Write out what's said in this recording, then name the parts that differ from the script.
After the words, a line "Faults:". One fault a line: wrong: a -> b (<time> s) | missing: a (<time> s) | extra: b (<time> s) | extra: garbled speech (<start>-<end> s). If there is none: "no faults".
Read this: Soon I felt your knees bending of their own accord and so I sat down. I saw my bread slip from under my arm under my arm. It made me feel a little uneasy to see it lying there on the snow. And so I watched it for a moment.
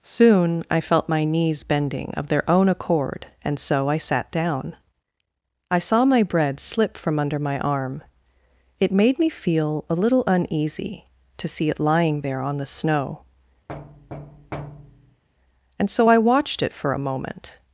Soon I felt my knees bending of their own accord and so I sat down. I saw my bread slip from under my arm. It made me feel a little uneasy to see it lying there on the snow. And so I watched it for a moment.
Faults:
wrong: your -> my (1.1 s)
missing: under my arm (8.0 s)